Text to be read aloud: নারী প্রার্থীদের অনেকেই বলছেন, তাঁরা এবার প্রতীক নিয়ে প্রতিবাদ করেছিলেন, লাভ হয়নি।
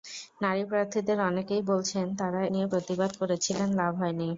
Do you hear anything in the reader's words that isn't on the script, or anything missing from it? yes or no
yes